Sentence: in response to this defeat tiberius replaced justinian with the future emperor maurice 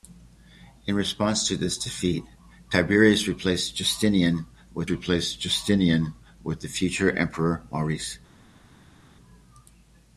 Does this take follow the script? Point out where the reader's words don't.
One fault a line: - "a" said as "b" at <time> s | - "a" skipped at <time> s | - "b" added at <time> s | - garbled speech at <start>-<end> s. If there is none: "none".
- "replaced justinian with" added at 4.9 s